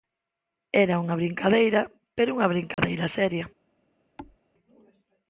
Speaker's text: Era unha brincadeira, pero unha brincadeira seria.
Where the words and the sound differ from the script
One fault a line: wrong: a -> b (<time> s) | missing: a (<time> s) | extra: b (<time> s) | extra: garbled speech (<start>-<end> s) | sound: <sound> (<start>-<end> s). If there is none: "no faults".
sound: dropout (2.7-2.8 s)
sound: thud (4.2-4.4 s)